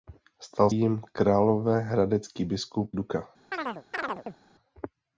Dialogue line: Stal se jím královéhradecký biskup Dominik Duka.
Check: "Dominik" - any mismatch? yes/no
yes